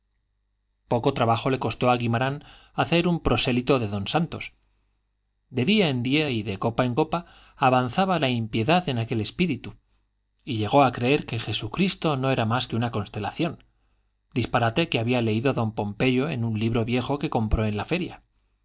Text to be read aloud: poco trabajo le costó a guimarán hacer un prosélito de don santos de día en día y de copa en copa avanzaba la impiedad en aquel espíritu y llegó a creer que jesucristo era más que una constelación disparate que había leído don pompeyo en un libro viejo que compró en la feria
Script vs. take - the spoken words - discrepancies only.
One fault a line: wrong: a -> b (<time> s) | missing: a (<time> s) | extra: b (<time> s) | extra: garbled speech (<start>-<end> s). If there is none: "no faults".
extra: no (12.1 s)